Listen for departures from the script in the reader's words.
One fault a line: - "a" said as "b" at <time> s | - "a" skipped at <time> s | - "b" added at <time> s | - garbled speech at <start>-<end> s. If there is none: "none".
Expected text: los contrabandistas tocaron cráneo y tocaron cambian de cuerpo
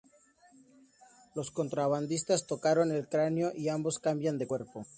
- "el" added at 2.9 s
- "tocaron" said as "ambos" at 3.7 s